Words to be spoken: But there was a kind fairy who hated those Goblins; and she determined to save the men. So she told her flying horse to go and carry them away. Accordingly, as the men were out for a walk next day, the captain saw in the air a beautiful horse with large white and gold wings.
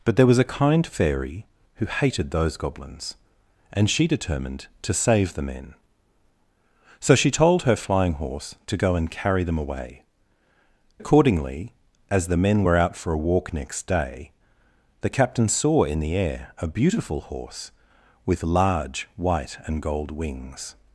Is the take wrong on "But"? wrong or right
right